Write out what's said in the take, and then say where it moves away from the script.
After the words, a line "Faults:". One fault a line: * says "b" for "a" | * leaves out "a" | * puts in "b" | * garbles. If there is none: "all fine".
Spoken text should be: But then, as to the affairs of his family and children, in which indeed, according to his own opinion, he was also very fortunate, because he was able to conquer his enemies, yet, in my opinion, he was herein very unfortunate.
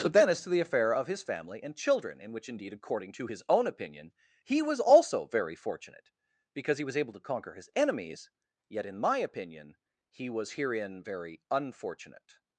But then, as to the affair of his family and children, in which indeed, according to his own opinion, he was also very fortunate, because he was able to conquer his enemies, yet, in my opinion, he was herein very unfortunate.
Faults:
* says "affair" for "affairs"